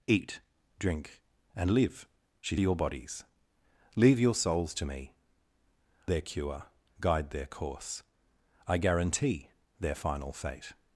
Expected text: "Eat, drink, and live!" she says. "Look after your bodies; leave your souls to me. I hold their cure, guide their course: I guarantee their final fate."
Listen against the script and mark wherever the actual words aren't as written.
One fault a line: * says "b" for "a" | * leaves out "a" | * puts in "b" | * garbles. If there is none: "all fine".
* leaves out "says Look after"
* leaves out "I hold"